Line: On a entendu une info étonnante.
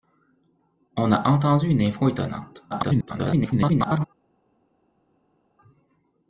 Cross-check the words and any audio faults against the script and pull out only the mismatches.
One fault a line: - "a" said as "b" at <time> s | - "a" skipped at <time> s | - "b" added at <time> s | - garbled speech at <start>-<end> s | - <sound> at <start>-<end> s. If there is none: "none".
- garbled speech at 2.7-4.0 s